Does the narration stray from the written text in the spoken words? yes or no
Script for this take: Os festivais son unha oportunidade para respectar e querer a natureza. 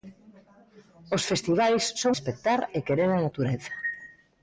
yes